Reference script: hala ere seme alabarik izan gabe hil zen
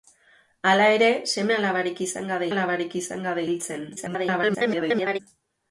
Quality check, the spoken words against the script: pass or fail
fail